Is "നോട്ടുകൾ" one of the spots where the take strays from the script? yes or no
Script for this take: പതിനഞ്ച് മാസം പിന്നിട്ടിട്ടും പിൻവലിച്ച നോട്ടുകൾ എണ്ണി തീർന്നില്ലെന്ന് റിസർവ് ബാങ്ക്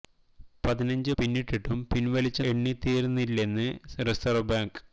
yes